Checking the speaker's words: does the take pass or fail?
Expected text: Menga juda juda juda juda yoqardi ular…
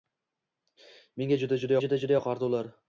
pass